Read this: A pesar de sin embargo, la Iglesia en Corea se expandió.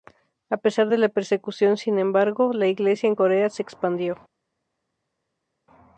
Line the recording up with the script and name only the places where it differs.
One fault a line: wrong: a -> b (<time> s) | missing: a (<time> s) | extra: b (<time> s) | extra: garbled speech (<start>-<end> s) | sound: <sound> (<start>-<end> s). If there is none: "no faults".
extra: la persecución (1.0 s)